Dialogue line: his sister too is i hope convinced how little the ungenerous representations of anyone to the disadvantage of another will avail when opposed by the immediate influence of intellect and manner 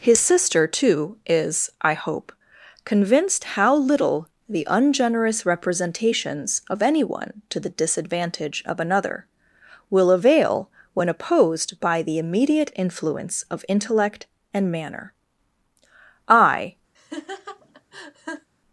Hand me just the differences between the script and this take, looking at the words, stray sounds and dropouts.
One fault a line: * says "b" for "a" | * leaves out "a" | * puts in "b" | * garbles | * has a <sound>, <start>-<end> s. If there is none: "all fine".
* puts in "i"
* has a laugh, 16.9-18.5 s